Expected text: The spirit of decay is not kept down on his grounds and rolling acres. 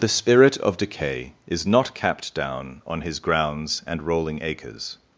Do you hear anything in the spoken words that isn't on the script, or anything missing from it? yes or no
yes